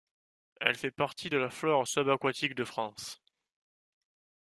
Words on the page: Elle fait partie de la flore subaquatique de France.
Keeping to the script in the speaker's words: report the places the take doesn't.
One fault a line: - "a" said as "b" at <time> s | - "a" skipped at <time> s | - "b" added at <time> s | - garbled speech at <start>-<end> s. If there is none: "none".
none